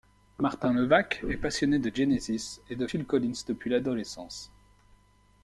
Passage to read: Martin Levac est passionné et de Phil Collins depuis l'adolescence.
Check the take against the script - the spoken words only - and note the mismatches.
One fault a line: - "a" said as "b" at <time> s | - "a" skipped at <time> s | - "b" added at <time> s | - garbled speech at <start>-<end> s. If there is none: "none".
- "de Genesis" added at 1.8 s